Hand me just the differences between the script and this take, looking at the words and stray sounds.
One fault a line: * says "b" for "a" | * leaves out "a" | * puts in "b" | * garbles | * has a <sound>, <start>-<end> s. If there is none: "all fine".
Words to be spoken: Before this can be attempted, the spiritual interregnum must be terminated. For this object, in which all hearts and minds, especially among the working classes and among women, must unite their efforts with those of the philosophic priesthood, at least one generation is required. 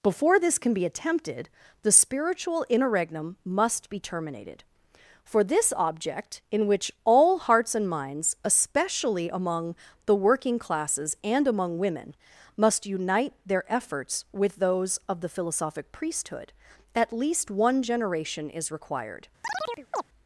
* has a chirp, 19.4-20.1 s